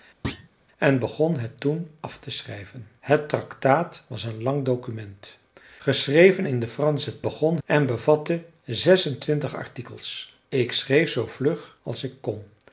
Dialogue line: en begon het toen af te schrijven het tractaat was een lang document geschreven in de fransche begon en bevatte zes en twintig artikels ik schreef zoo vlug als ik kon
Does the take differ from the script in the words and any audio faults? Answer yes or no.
yes